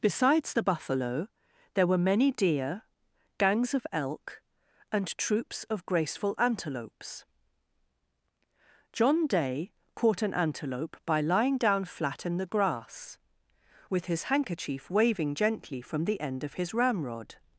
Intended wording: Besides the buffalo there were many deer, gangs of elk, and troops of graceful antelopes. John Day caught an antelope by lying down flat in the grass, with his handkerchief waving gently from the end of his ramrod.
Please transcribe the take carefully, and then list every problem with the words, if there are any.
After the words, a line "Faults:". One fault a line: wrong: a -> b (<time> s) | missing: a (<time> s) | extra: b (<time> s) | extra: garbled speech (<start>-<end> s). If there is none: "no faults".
Besides the buffalo there were many deer, gangs of elk, and troops of graceful antelopes. John Day caught an antelope by lying down flat in the grass, with his handkerchief waving gently from the end of his ramrod.
Faults:
no faults